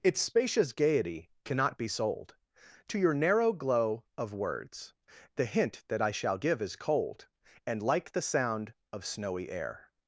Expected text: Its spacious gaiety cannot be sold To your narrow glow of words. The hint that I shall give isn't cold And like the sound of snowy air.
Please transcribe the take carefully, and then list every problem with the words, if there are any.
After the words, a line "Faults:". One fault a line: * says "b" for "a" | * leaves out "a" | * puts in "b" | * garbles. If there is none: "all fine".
Its spacious gaiety cannot be sold To your narrow glow of words. The hint that I shall give is cold And like the sound of snowy air.
Faults:
* says "is" for "isn't"